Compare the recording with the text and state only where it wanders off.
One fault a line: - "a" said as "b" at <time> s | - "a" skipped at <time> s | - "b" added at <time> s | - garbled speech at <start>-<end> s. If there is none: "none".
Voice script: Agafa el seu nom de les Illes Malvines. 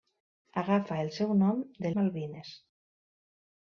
- "les Illes" skipped at 1.9 s